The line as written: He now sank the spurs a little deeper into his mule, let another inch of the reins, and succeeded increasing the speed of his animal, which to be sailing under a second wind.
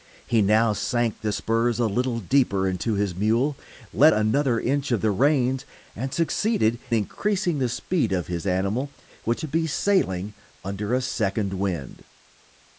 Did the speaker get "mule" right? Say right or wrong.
right